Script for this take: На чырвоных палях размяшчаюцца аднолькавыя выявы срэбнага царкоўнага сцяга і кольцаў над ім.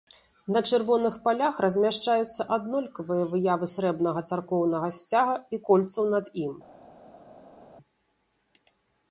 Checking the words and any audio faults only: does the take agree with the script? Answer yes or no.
yes